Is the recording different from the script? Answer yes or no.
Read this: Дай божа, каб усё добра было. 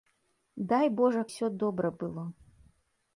yes